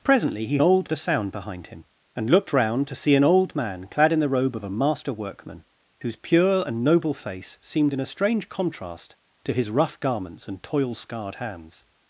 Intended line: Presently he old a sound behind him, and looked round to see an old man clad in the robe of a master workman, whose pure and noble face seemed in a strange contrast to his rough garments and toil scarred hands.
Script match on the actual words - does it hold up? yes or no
yes